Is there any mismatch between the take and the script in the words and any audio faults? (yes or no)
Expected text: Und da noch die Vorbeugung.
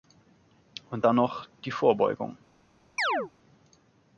yes